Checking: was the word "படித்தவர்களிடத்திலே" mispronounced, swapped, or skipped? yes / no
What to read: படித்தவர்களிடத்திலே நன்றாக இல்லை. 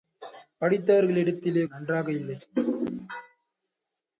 no